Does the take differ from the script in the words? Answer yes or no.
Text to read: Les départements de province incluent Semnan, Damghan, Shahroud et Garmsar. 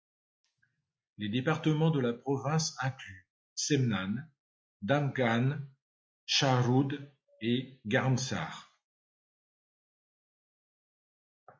yes